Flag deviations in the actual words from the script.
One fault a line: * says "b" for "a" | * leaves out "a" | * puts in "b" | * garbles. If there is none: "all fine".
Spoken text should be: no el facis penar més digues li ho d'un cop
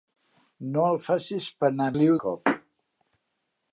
* leaves out "més digues"
* leaves out "d'un"